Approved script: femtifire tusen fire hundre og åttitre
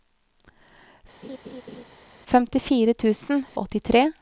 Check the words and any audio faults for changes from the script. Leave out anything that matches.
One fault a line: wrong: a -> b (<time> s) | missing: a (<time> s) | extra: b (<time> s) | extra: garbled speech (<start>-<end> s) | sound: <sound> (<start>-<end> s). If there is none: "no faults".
sound: laugh (1.2-1.8 s)
missing: fire hundre (3.4 s)